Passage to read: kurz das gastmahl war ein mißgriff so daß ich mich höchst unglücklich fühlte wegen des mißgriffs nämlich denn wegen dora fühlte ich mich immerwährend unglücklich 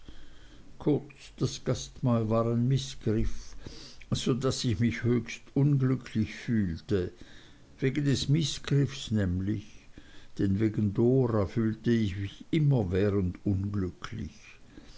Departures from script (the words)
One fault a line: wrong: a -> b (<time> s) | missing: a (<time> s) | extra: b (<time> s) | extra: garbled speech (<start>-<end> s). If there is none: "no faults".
no faults